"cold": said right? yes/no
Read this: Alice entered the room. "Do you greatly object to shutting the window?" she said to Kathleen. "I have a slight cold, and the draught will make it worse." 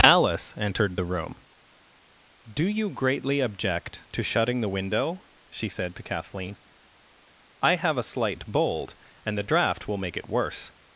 no